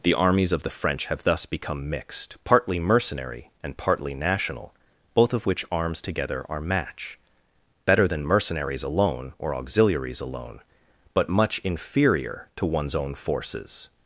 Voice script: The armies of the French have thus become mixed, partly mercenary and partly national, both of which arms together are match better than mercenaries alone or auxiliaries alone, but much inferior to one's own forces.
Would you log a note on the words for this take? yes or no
no